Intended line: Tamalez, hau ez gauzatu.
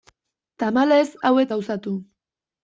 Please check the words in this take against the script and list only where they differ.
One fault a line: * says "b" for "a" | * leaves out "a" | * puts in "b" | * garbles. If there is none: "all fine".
all fine